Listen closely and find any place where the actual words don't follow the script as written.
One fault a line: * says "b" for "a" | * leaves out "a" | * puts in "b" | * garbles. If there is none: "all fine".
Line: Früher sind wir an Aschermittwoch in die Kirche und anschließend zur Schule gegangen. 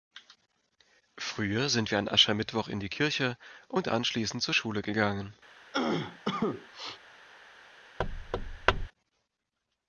all fine